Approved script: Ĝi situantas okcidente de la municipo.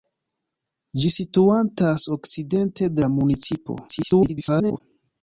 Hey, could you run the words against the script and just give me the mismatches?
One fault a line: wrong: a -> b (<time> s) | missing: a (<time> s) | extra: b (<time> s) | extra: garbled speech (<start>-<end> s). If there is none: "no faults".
extra: garbled speech (3.9-4.8 s)